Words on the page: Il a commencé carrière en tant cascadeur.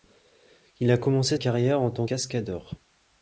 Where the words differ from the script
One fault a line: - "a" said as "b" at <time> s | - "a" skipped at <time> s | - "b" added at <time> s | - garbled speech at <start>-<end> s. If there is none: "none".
none